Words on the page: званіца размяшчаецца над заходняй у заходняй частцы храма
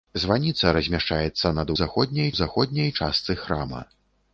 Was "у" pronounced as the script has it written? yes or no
yes